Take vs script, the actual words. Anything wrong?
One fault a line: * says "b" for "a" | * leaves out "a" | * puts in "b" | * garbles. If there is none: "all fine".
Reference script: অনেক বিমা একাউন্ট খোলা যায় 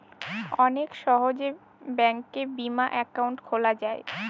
* puts in "সহজে ব্যাঙ্কে"